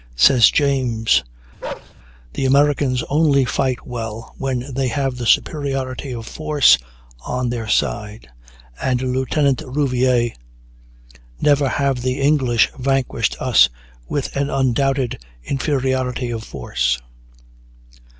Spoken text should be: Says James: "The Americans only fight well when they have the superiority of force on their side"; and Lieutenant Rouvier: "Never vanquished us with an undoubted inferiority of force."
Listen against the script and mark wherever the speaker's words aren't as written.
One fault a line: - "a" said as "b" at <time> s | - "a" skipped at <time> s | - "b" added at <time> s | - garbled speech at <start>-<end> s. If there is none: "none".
- "have the English" added at 11.7 s